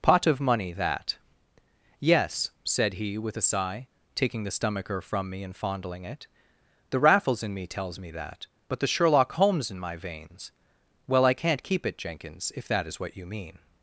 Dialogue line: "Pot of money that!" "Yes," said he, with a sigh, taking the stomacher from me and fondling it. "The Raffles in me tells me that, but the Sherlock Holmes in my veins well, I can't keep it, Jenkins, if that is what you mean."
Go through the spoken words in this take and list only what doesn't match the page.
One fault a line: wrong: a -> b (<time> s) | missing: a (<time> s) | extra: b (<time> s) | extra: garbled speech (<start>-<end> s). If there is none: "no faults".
no faults